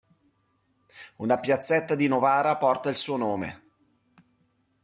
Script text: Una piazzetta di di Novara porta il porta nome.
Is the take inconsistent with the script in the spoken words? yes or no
yes